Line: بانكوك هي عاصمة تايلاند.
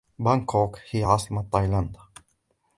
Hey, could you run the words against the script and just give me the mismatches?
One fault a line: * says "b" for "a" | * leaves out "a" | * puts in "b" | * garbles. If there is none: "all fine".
all fine